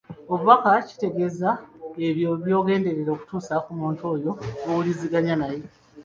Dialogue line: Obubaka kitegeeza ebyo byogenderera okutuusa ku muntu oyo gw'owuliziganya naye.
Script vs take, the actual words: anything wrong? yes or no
no